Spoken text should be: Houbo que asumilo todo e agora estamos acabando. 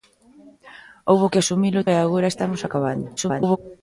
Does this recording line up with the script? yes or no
no